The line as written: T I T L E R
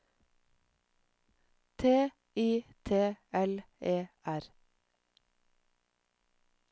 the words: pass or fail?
pass